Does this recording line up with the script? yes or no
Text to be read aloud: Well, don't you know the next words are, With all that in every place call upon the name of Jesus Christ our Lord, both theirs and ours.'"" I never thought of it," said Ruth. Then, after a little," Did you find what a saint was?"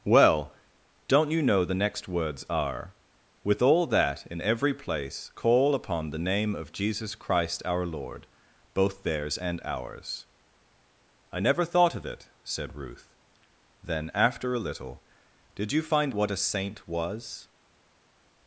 yes